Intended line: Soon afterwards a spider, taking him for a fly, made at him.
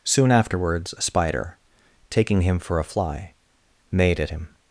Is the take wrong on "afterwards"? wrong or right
right